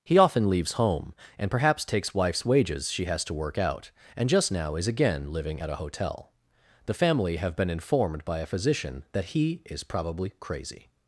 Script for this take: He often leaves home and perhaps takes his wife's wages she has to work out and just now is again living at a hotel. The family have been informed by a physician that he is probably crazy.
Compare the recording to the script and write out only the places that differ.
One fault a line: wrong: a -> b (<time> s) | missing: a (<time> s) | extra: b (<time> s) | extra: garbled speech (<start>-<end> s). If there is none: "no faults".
missing: his (2.1 s)